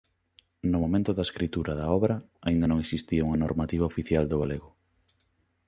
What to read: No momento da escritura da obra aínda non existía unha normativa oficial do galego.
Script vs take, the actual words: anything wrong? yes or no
no